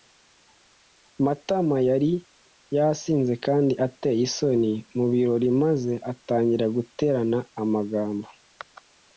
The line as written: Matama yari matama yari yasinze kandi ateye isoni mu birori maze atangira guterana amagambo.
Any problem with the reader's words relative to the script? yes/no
yes